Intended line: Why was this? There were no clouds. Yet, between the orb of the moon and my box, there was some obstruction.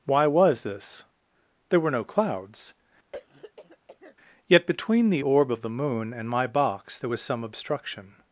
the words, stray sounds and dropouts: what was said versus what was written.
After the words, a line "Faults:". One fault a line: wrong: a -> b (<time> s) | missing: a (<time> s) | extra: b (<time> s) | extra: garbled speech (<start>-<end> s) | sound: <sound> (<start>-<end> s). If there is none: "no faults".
Why was this? There were no clouds. Yet, between the orb of the moon and my box, there was some obstruction.
Faults:
sound: throat clearing (3.1-4.2 s)